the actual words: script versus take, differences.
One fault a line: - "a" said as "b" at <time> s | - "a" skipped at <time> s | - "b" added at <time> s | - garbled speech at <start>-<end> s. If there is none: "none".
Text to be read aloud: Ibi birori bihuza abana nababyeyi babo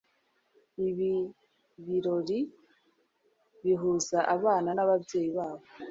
none